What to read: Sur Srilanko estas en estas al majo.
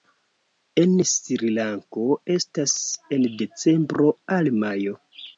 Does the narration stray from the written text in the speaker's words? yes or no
yes